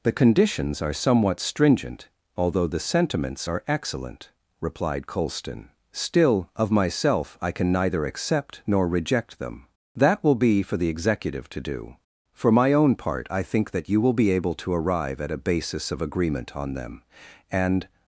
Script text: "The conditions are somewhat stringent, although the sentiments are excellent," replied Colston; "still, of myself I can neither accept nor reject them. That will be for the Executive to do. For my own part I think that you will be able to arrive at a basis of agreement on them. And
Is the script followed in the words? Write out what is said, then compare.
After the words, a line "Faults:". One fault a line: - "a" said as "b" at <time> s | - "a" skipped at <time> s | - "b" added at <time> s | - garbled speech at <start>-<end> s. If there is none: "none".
"The conditions are somewhat stringent, although the sentiments are excellent," replied Colston; "still, of myself I can neither accept nor reject them. That will be for the Executive to do. For my own part I think that you will be able to arrive at a basis of agreement on them. And
Faults:
none